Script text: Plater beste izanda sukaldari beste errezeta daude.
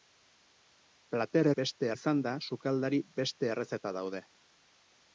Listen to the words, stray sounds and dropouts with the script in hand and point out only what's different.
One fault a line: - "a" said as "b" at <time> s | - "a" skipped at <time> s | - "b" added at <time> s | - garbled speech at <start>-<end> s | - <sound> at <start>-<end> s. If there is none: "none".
none